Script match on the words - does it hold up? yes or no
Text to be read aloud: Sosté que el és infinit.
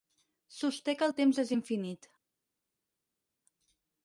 no